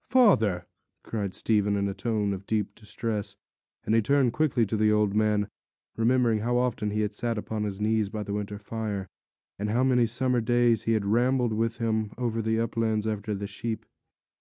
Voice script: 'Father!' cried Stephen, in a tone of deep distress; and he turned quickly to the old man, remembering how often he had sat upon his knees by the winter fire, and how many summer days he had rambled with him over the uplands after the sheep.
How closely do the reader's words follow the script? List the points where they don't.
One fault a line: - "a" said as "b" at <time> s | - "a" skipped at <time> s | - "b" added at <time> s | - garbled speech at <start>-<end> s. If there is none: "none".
none